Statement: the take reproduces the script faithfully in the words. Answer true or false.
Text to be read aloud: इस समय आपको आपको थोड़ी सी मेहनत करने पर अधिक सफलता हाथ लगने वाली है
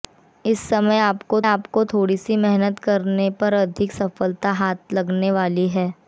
true